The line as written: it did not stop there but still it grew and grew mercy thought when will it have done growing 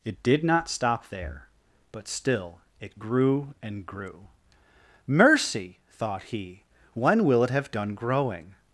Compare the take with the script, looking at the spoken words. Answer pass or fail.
fail